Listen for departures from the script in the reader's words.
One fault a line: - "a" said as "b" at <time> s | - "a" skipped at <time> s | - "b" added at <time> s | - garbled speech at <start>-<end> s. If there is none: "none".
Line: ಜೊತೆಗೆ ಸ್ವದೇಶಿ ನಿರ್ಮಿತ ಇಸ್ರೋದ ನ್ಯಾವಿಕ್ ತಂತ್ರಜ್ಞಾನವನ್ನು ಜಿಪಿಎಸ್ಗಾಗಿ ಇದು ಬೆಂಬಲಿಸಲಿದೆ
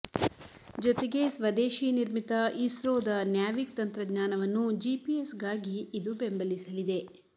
none